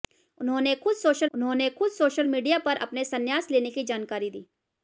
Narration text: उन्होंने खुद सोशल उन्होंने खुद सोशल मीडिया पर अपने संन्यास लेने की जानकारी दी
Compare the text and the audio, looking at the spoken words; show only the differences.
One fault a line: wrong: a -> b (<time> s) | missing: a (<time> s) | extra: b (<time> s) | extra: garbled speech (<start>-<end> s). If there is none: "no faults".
no faults